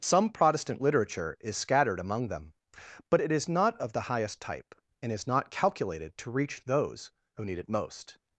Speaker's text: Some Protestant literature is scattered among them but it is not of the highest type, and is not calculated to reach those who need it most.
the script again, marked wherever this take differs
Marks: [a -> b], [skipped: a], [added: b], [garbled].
Some Protestant literature is scattered among them but it is not of the highest type, and is not calculated to reach those who need it most.